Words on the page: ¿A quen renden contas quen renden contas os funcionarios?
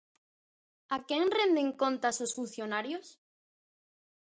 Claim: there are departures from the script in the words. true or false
true